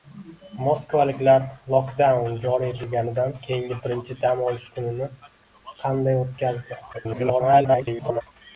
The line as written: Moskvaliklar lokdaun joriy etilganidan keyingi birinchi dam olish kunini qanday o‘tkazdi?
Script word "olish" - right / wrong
right